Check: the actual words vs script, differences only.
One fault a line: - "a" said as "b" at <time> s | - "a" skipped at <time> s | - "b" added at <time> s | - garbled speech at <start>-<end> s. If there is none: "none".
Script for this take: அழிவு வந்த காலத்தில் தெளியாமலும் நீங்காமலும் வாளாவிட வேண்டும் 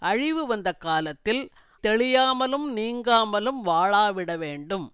none